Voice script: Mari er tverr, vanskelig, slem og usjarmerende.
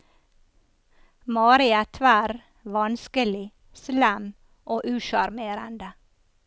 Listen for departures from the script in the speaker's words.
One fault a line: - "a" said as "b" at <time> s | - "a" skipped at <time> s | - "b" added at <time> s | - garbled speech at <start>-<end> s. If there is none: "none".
none